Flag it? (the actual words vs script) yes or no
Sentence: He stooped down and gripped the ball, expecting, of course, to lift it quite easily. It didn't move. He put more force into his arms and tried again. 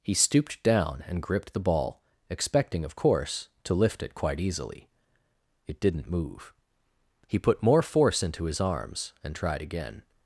no